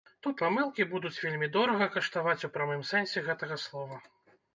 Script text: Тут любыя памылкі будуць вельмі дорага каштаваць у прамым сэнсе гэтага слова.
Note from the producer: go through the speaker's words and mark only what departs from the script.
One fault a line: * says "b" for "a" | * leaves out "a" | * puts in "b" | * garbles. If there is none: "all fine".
* leaves out "любыя"